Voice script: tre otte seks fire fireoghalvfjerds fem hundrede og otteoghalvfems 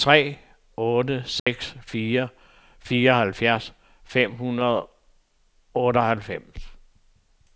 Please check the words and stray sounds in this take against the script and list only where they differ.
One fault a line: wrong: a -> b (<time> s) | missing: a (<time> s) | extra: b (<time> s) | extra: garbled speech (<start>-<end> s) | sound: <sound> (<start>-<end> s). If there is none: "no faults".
sound: dropout (1.4-1.5 s)